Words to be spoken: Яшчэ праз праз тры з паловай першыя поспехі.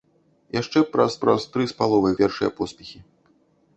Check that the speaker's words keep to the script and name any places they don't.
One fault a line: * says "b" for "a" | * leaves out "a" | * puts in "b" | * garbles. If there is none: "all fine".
all fine